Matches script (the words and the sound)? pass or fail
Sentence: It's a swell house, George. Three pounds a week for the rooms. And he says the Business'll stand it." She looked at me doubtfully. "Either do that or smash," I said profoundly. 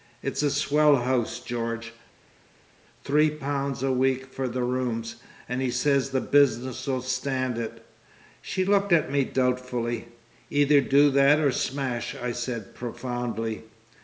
pass